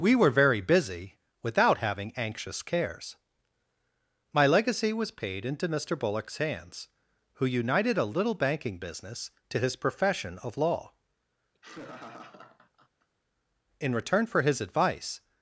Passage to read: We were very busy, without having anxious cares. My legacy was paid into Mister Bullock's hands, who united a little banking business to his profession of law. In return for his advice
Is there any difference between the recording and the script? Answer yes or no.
no